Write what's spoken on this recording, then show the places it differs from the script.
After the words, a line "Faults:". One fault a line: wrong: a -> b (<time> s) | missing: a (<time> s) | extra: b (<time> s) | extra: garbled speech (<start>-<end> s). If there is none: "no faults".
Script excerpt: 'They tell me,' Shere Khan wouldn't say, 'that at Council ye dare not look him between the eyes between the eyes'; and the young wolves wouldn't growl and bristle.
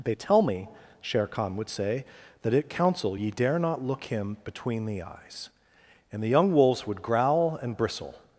'They tell me,' Shere Khan would say, 'that at Council ye dare not look him between the eyes'; and the young wolves would growl and bristle.
Faults:
wrong: wouldn't -> would (1.6 s)
missing: between the eyes (5.5 s)
wrong: wouldn't -> would (6.9 s)